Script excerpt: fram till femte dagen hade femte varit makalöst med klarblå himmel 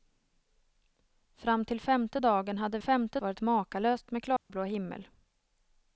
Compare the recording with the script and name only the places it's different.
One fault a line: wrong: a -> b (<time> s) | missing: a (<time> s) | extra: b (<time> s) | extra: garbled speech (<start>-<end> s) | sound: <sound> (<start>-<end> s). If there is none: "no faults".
sound: dropout (4.4-4.5 s)